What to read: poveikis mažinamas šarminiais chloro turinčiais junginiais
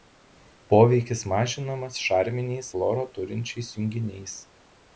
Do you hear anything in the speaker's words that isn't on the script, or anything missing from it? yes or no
no